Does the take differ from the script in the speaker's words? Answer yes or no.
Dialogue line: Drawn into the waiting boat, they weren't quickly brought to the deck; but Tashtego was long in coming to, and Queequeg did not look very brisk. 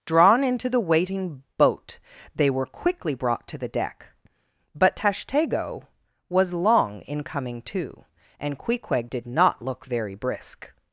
yes